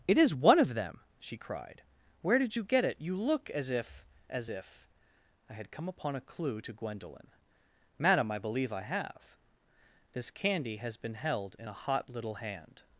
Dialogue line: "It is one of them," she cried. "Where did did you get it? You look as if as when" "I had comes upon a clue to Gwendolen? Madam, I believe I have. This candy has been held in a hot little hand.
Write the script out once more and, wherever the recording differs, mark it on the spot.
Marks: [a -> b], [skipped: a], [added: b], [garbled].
"It is one of them," she cried. "Where did [skipped: did] you get it? You look as if as [when" -> if] "I had [comes -> come] upon a clue to Gwendolen? Madam, I believe I have. This candy has been held in a hot little hand.